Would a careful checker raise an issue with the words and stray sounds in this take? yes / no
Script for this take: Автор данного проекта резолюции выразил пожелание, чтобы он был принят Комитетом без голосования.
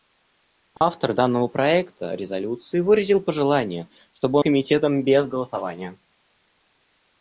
yes